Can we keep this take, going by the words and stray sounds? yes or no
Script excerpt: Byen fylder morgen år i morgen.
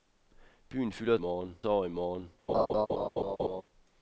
no